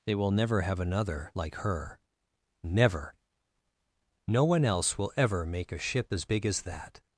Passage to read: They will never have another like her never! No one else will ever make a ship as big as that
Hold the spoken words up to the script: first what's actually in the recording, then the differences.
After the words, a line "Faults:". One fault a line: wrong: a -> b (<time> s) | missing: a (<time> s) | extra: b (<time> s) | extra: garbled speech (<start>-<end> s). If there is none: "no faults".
They will never have another like her never! No one else will ever make a ship as big as that
Faults:
no faults